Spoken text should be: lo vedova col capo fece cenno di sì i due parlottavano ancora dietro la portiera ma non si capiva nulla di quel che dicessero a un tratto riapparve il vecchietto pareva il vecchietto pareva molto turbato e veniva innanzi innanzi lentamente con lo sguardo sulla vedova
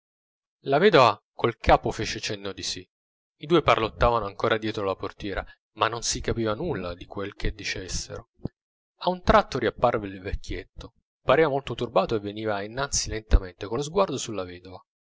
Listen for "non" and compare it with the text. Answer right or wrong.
right